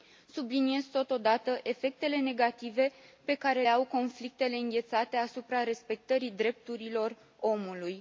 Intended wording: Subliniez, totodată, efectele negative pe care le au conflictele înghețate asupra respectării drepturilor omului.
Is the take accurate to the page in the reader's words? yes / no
no